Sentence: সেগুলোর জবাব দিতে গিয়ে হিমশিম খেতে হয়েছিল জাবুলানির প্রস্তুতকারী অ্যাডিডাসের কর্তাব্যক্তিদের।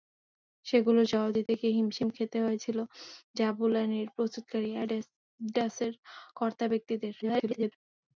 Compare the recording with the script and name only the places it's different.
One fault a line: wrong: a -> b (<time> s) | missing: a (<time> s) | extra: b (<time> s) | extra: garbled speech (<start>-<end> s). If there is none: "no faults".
extra: garbled speech (7.2-7.7 s)